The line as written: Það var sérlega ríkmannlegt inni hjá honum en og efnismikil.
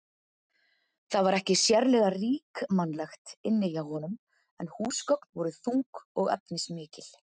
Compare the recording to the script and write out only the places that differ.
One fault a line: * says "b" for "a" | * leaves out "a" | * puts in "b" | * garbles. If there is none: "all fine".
* puts in "ekki"
* puts in "húsgögn voru þung"